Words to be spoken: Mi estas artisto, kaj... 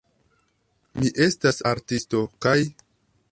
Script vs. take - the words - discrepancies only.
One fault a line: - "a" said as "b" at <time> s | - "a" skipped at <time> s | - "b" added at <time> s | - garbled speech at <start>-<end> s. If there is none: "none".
none